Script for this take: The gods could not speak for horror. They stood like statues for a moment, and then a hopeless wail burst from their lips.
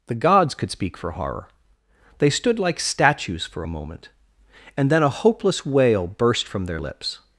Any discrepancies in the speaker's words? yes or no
yes